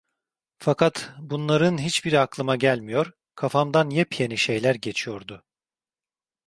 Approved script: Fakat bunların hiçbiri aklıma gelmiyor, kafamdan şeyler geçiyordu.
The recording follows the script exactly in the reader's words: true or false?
false